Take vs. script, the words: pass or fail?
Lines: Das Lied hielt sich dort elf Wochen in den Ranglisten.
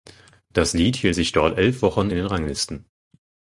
pass